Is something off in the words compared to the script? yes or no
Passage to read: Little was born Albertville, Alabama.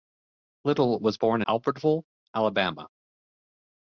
no